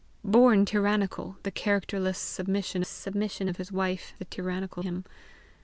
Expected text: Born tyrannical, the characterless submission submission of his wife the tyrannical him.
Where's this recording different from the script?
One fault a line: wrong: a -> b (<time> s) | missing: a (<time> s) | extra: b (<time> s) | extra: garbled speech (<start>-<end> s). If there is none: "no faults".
no faults